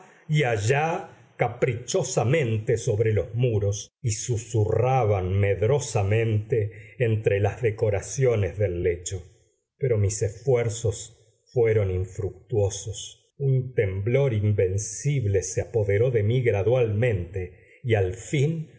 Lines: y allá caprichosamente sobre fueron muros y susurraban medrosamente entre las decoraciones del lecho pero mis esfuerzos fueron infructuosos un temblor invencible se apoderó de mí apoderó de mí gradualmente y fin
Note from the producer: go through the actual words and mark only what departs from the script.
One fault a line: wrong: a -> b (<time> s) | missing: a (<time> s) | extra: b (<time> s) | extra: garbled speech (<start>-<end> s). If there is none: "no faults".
wrong: fueron -> los (3.1 s)
missing: apoderó de mí (16.4 s)
extra: al (17.9 s)